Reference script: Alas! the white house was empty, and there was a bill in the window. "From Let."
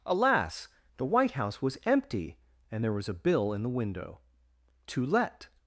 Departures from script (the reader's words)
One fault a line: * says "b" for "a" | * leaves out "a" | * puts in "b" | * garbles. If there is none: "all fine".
* says "To" for "From"